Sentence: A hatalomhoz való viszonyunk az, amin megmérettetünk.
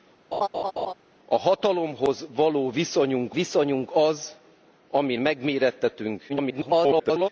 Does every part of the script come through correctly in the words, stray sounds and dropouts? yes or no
no